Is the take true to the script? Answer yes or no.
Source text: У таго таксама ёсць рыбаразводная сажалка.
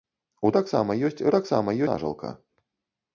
no